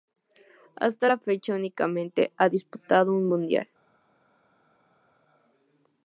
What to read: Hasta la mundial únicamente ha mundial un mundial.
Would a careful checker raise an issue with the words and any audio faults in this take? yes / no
yes